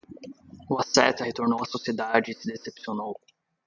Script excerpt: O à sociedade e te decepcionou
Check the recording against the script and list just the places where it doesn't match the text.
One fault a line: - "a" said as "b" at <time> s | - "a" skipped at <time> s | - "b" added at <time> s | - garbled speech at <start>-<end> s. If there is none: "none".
- "asceta retornou" added at 0.8 s
- "te" said as "se" at 2.3 s